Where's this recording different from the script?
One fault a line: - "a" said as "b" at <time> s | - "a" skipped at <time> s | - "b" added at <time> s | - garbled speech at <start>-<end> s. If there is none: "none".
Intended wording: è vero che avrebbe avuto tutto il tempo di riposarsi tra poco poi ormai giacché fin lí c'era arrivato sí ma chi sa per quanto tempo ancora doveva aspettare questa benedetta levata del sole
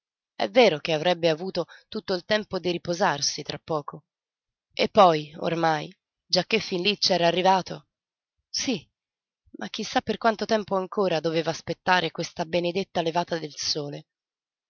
- "e" added at 4.7 s